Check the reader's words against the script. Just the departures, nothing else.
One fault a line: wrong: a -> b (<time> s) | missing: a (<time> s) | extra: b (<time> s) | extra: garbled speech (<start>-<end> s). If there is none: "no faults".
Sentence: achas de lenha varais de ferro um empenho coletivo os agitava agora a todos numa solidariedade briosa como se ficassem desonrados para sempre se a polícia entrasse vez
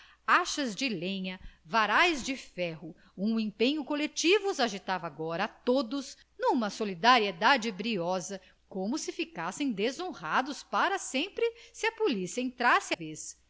no faults